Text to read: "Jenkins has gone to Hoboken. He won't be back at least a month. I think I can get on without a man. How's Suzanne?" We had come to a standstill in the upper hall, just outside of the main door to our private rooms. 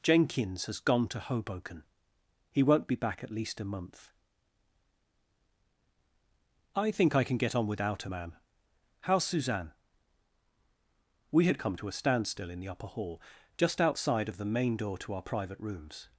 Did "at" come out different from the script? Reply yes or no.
no